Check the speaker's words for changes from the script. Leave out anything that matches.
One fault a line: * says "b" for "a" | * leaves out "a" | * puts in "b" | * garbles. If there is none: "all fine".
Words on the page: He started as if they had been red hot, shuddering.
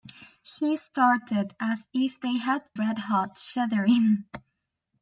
* leaves out "been"